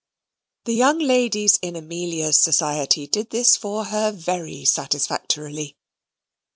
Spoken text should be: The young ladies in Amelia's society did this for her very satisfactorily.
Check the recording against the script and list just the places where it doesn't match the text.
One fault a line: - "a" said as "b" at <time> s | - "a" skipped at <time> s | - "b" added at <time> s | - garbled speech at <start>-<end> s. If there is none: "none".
none